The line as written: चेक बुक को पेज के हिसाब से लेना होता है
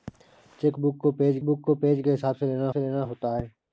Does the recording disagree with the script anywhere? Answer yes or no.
yes